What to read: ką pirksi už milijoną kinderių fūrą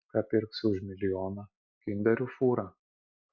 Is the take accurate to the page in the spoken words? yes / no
yes